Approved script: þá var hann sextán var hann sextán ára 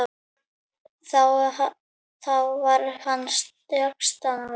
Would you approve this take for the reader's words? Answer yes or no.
no